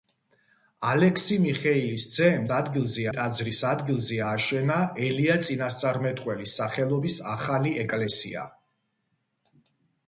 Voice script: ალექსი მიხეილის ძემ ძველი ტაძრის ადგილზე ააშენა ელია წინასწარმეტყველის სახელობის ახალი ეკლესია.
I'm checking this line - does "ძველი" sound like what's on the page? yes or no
no